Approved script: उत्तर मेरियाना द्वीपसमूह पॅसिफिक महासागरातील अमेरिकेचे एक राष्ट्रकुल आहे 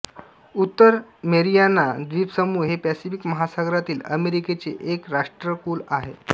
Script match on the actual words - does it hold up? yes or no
no